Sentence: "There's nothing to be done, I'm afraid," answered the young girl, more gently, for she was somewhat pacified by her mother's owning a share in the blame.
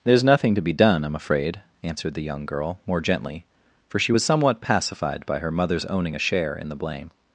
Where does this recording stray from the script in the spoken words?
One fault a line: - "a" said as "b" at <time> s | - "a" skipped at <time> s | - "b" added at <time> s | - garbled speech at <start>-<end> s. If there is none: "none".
none